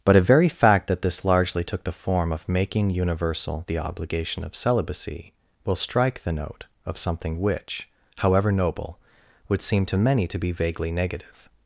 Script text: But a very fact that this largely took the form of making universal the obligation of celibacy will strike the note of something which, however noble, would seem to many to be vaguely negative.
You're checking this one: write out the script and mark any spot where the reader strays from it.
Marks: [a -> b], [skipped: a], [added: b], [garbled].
But a very fact that this largely took the form of making universal the obligation of celibacy will strike the note of something which, however noble, would seem to many to be vaguely negative.